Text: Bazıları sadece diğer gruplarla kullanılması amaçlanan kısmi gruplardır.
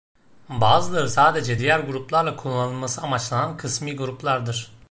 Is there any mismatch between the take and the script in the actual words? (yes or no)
no